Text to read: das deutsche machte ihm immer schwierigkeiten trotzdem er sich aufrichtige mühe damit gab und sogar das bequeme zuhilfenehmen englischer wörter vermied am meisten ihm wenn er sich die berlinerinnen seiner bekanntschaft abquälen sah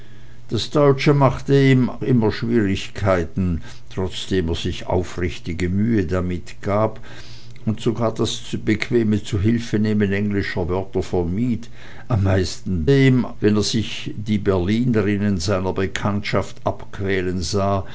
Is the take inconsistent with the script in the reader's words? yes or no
no